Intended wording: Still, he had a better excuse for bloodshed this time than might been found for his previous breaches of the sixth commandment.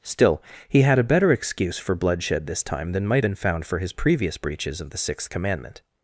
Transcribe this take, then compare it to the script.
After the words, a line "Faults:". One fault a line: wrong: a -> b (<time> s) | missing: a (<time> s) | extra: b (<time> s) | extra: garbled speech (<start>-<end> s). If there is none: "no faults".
Still, he had a better excuse for bloodshed this time than might been found for his previous breaches of the sixth commandment.
Faults:
no faults